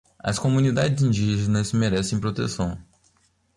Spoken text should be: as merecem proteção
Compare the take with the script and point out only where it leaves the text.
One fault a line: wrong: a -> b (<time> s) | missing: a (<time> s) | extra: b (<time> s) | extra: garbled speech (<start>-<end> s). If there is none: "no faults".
extra: comunidades indígenas (0.4 s)